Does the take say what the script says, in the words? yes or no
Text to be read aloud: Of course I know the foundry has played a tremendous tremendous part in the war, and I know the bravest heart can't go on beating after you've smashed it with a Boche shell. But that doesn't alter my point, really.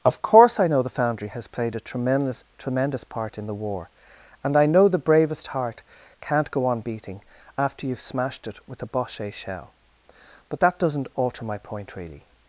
yes